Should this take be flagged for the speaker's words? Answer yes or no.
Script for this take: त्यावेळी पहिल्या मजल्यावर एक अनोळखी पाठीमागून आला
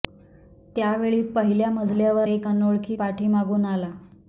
no